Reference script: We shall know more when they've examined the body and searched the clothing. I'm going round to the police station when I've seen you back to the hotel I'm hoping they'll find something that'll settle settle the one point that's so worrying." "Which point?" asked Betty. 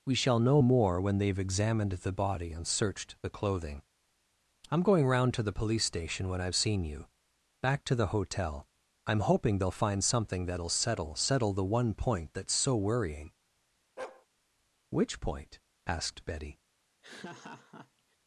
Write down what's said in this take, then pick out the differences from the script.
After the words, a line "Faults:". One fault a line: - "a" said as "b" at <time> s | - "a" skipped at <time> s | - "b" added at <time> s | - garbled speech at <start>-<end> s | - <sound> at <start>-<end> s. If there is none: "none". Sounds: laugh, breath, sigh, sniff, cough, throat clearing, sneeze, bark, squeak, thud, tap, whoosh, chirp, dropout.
We shall know more when they've examined the body and searched the clothing. I'm going round to the police station when I've seen you back to the hotel I'm hoping they'll find something that'll settle settle the one point that's so worrying." "Which point?" asked Betty.
Faults:
- bark at 14.0-14.3 s
- laugh at 17.0-18.2 s